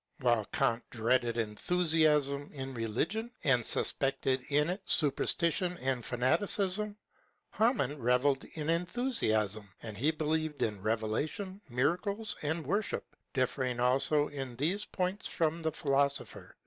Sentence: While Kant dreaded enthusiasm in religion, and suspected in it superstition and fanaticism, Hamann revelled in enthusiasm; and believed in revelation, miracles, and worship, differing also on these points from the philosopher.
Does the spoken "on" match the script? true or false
false